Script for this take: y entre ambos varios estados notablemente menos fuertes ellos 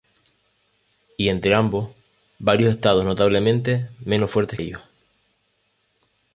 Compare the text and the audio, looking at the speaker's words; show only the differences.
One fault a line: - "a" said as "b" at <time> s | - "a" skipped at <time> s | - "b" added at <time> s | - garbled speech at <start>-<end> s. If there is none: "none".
none